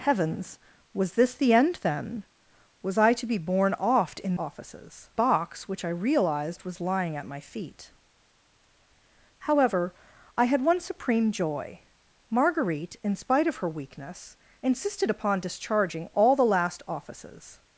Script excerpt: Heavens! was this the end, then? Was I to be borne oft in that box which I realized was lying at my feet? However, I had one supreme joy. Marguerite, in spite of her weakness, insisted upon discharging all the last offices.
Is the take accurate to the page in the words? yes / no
no